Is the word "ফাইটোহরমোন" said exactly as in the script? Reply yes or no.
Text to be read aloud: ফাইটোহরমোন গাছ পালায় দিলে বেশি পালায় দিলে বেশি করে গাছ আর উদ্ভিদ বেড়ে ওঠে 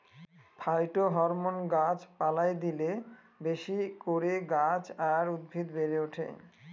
yes